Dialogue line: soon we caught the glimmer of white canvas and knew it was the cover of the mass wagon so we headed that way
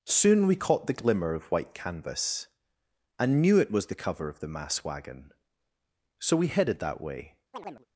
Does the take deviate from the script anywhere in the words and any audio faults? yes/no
yes